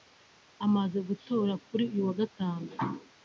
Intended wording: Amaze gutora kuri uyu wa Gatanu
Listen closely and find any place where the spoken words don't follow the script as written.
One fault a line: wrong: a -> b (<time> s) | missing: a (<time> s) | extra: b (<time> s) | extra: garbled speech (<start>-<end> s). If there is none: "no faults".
no faults